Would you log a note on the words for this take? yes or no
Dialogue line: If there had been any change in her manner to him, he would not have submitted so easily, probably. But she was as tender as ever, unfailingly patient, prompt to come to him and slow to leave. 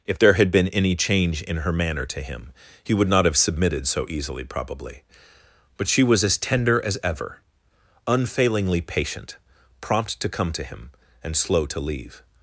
no